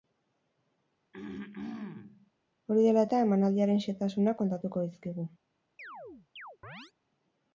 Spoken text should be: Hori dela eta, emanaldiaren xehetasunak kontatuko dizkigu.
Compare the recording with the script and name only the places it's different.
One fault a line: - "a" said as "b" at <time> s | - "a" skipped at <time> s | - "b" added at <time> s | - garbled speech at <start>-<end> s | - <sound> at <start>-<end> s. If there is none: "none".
- throat clearing at 1.1-2.3 s
- chirp at 5.8-6.9 s